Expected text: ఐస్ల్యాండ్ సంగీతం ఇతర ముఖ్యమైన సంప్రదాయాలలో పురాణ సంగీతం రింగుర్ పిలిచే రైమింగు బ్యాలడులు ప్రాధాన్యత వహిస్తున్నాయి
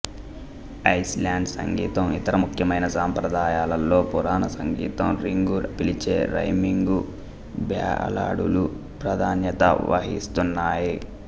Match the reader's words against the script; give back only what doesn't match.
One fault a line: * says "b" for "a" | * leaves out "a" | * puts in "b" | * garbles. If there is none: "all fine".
all fine